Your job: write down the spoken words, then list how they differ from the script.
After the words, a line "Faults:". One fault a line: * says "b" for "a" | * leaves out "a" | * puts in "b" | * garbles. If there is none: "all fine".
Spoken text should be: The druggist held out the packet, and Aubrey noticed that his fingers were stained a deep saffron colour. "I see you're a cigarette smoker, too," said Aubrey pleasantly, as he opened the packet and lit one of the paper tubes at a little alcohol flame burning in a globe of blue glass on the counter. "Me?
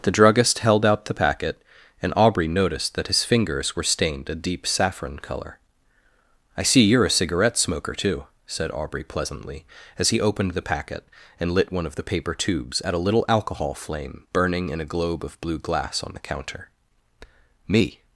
The druggist held out the packet, and Aubrey noticed that his fingers were stained a deep saffron colour. "I see you're a cigarette smoker, too," said Aubrey pleasantly, as he opened the packet and lit one of the paper tubes at a little alcohol flame burning in a globe of blue glass on the counter. "Me?
Faults:
all fine